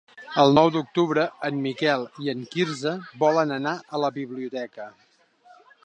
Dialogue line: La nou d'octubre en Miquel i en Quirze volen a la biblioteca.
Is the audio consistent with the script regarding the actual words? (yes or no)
no